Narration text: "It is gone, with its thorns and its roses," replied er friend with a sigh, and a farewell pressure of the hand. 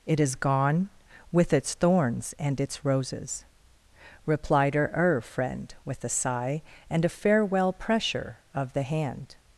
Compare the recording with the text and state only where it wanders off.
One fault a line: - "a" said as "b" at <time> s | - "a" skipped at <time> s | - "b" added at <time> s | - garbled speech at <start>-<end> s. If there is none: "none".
- "her" added at 4.8 s